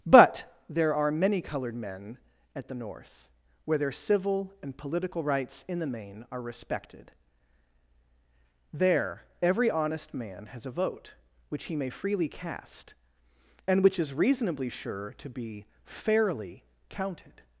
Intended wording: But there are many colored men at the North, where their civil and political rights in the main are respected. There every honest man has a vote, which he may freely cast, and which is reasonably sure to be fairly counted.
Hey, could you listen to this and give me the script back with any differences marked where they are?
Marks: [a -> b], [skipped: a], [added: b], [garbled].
But there are many colored men at the North, where their civil and political rights in the main are respected. There every honest man has a vote, which he may freely cast, and which is reasonably sure to be fairly counted.